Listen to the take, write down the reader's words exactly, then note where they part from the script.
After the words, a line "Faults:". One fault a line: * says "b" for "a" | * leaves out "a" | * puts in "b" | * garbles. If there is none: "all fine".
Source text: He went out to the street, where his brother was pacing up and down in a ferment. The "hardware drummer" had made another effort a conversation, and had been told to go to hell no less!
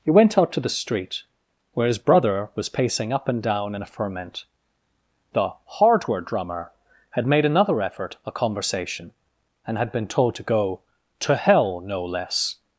He went out to the street, where his brother was pacing up and down in a ferment. The "hardware drummer" had made another effort a conversation, and had been told to go to hell no less!
Faults:
all fine